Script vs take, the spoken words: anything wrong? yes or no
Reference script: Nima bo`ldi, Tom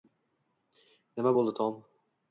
no